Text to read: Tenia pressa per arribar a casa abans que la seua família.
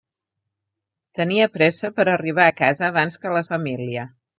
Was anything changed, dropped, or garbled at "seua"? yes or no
yes